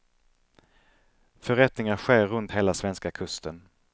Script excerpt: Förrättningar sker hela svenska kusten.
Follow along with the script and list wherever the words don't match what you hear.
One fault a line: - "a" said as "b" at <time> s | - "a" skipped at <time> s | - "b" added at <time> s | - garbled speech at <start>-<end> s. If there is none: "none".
- "runt" added at 2.3 s